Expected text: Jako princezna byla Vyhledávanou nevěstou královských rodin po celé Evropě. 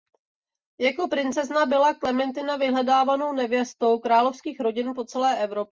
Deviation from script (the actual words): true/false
true